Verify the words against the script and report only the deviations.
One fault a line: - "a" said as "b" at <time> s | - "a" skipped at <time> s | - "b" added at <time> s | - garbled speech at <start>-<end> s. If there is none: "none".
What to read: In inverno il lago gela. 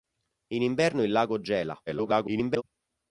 - garbled speech at 1.9-2.6 s